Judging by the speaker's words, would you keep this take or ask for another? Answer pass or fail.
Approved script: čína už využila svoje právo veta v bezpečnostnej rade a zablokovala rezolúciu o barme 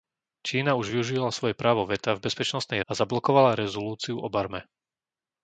fail